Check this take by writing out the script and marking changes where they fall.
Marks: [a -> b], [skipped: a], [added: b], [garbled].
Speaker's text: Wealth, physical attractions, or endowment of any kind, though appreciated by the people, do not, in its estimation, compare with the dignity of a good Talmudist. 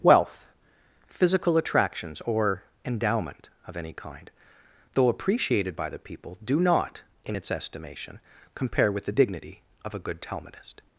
Wealth, physical attractions, or endowment of any kind, though appreciated by the people, do not, in its estimation, compare with the dignity of a good Talmudist.